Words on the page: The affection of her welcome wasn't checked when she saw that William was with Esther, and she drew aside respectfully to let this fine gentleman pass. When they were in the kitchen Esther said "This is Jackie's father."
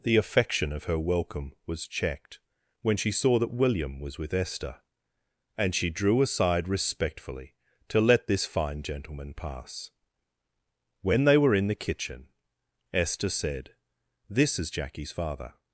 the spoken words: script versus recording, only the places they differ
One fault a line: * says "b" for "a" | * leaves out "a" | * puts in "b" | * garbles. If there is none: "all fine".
* says "was" for "wasn't"